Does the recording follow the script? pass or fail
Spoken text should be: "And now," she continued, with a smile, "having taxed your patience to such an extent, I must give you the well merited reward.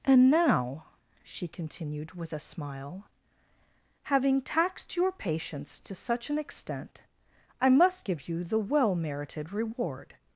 pass